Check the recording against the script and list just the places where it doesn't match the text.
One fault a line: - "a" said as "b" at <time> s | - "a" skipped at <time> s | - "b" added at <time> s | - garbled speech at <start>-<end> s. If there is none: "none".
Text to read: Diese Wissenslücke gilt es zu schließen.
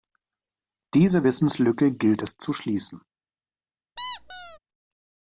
none